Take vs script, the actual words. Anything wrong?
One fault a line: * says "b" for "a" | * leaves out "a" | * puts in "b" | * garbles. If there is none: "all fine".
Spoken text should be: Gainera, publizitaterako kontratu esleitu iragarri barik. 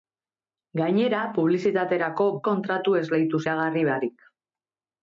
all fine